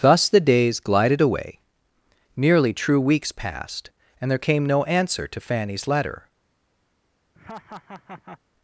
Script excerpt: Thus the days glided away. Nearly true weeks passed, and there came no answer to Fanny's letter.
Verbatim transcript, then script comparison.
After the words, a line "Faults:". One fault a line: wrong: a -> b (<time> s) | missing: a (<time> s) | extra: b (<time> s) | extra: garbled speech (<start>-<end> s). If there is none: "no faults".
Thus the days glided away. Nearly true weeks passed, and there came no answer to Fanny's letter.
Faults:
no faults